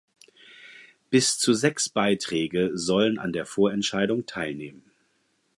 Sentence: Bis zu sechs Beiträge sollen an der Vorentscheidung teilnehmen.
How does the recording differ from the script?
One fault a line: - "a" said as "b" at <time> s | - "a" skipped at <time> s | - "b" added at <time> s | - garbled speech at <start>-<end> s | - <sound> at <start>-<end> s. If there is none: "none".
none